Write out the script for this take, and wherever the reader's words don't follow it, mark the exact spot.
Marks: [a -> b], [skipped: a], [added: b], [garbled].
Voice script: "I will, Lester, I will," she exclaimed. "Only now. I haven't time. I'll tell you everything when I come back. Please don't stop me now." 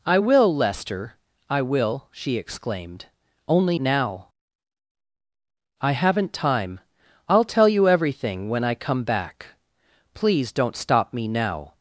"I will, Lester, I will," she exclaimed. "Only now. I haven't time. I'll tell you everything when I come back. Please don't stop me now."